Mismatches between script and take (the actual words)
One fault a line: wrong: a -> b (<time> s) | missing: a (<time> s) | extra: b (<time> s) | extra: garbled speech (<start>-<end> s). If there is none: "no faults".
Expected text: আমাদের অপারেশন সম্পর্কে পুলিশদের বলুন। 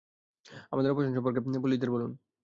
no faults